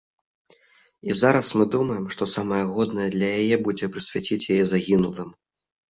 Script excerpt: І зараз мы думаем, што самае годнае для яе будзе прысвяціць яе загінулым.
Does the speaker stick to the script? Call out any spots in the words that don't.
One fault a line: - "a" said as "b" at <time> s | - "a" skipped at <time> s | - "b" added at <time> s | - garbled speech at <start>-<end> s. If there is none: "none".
none